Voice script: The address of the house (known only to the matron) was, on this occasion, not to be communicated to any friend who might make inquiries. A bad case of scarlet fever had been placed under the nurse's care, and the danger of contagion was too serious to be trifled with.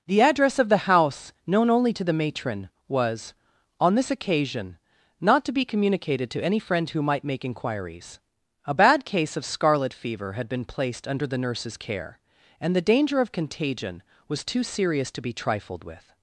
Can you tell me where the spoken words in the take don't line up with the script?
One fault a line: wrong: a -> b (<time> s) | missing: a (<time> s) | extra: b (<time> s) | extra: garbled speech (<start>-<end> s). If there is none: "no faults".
no faults